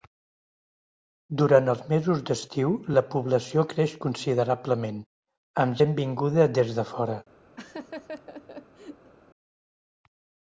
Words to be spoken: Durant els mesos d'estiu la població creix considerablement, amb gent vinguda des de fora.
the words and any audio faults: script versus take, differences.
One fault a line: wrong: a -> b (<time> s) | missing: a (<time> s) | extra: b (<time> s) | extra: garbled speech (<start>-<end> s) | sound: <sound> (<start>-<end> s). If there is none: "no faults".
sound: laugh (7.6-9.1 s)